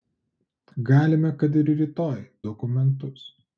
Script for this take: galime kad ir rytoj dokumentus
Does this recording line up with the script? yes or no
yes